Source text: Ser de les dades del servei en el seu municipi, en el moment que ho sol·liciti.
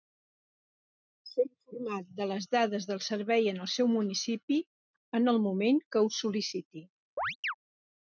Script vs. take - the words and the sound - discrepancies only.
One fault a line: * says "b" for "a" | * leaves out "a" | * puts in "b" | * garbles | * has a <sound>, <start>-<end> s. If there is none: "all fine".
* puts in "informat"
* has a chirp, 7.2-7.5 s